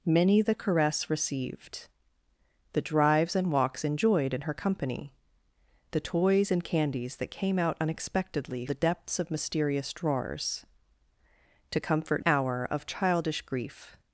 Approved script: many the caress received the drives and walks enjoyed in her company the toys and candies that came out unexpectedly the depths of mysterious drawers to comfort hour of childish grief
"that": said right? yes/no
yes